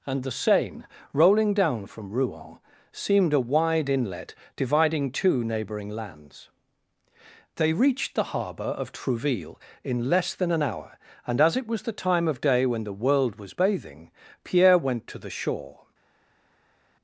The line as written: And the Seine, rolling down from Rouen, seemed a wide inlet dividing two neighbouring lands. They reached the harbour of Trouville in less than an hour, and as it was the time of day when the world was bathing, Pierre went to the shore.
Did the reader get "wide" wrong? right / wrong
right